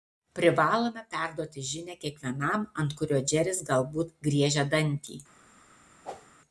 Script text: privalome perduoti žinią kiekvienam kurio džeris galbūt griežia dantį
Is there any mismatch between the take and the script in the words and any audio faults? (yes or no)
yes